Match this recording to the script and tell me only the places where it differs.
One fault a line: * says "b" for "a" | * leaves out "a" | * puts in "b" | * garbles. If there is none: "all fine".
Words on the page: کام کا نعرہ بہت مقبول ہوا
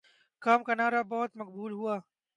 all fine